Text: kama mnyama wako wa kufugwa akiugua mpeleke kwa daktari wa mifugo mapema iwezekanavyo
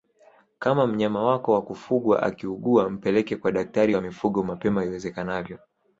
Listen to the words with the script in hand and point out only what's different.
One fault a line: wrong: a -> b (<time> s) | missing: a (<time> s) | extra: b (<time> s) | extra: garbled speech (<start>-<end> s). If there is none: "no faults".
no faults